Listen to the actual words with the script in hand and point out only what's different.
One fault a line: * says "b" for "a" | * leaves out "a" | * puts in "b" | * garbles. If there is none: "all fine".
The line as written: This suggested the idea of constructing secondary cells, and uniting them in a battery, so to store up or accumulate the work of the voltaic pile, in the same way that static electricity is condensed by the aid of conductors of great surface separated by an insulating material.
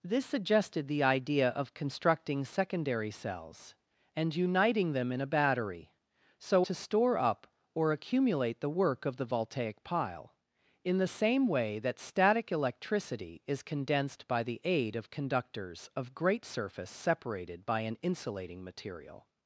all fine